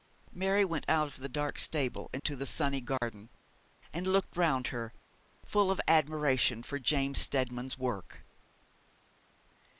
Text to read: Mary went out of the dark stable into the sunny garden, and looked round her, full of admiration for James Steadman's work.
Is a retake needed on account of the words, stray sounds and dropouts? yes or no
yes